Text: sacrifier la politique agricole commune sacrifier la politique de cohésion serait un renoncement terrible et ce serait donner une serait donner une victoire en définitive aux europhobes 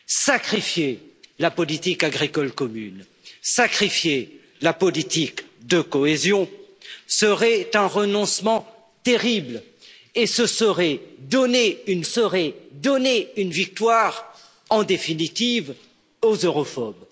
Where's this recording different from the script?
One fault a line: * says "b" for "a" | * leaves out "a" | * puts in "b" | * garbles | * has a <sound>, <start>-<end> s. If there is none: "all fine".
all fine